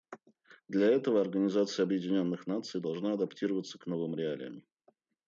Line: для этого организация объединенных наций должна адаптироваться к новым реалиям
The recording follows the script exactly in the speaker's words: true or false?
true